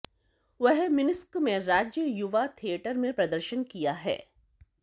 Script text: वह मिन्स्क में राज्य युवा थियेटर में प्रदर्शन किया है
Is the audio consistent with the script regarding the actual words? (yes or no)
yes